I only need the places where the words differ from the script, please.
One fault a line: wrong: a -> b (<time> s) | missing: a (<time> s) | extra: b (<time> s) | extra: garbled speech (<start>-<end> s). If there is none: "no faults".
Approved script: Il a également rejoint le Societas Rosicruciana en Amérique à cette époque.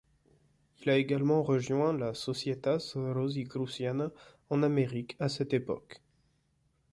wrong: le -> la (1.9 s)